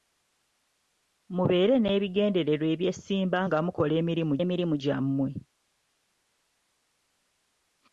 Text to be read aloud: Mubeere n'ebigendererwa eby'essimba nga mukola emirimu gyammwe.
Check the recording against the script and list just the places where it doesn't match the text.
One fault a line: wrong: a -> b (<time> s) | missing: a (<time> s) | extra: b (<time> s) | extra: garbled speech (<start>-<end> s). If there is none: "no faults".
extra: emirimu (4.4 s)